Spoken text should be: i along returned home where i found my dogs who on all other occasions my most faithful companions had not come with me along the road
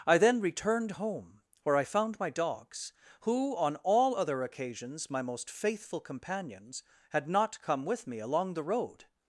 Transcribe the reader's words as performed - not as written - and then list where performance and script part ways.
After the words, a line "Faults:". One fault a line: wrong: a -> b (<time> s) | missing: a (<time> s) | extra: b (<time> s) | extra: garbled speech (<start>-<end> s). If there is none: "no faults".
i then returned home where i found my dogs who on all other occasions my most faithful companions had not come with me along the road
Faults:
wrong: along -> then (0.2 s)